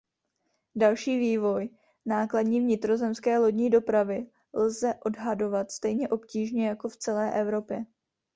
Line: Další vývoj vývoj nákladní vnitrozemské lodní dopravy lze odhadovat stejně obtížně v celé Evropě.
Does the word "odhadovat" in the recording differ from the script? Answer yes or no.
no